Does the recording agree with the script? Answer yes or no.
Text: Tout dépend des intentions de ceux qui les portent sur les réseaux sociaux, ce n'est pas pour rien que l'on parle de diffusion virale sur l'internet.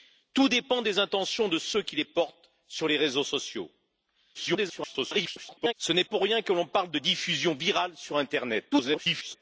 no